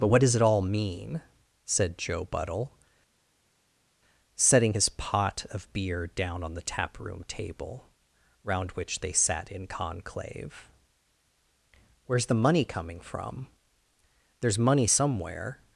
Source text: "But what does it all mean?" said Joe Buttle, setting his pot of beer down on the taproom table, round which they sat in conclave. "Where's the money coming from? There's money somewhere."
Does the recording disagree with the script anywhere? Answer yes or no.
no